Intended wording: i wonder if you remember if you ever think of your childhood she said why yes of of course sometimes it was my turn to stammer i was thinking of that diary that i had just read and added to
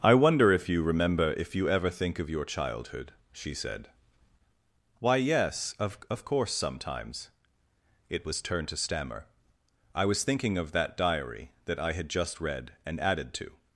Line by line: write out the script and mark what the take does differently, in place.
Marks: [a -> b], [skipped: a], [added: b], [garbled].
i wonder if you remember if you ever think of your childhood she said why yes of of course sometimes it was [skipped: my] turn to stammer i was thinking of that diary that i had just read and added to